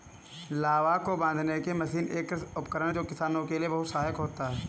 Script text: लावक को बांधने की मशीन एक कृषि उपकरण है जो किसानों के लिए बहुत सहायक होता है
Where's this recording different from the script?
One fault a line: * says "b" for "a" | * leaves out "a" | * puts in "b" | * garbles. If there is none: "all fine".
all fine